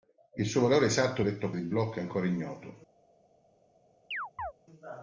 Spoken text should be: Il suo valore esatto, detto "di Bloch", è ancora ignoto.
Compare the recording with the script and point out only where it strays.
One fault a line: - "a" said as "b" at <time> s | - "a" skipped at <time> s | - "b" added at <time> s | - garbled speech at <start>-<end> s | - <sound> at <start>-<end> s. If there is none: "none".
- chirp at 4.1-4.5 s